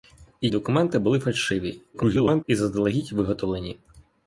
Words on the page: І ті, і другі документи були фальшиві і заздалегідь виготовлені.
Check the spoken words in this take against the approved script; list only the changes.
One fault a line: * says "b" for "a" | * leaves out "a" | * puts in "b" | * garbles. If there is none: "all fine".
* leaves out "ті і другі"
* garbles